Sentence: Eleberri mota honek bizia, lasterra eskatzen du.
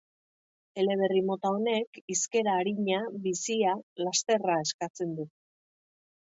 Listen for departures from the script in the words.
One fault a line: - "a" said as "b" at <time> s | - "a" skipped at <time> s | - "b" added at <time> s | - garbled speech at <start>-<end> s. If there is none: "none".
- "hizkera arina" added at 2.1 s